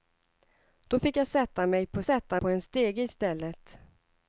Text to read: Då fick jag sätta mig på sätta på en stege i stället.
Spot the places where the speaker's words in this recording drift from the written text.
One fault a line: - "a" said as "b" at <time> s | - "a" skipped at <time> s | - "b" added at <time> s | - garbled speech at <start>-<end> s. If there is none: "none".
none